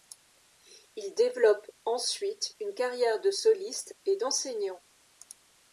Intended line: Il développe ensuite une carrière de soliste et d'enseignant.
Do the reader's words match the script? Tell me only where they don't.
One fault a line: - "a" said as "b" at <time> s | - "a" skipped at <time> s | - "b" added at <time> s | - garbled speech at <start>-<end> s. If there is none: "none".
none